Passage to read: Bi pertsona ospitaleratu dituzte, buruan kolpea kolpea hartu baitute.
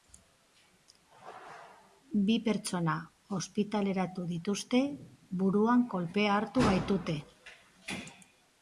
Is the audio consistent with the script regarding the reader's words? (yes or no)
no